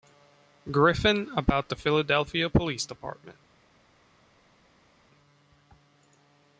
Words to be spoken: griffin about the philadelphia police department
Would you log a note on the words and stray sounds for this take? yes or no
no